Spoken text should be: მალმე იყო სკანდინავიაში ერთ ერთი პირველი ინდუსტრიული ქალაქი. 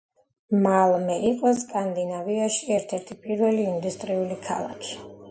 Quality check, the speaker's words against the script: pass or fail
pass